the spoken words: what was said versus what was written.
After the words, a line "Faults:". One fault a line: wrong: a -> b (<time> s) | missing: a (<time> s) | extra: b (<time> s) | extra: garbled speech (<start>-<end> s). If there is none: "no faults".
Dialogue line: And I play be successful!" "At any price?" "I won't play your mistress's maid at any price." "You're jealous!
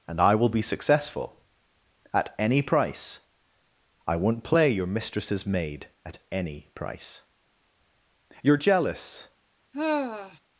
And I will be successful!" "At any price?" "I won't play your mistress's maid at any price." "You're jealous!
Faults:
wrong: play -> will (0.3 s)